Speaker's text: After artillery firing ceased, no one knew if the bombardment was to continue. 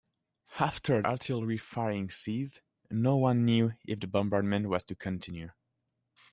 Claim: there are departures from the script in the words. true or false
false